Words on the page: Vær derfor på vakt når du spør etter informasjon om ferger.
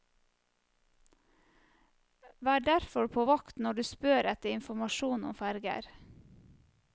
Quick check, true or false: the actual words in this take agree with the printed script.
true